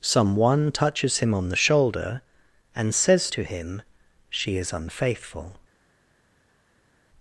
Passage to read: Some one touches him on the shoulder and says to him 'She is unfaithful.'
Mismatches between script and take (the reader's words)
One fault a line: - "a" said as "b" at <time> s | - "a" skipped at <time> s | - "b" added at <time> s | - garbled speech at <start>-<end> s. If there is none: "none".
none